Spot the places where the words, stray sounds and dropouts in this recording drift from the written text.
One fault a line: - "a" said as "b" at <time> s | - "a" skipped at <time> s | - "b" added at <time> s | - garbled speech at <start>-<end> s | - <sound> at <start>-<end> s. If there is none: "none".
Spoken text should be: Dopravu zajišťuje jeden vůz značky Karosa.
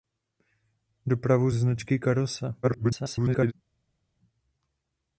- "zajišťuje jeden vůz" skipped at 1.5 s
- garbled speech at 2.6-3.5 s